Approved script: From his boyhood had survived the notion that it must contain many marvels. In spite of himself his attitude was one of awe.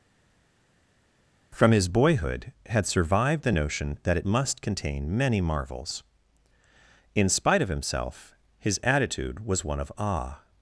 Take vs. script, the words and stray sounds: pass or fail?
pass